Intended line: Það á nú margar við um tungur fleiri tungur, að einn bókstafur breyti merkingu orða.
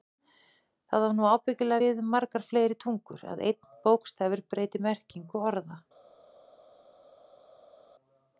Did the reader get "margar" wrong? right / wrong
wrong